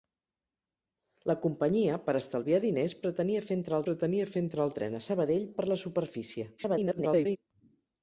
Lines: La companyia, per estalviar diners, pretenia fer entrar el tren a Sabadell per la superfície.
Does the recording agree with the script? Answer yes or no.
no